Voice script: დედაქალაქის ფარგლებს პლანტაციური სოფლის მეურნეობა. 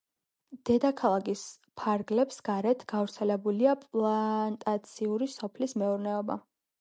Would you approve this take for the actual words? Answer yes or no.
no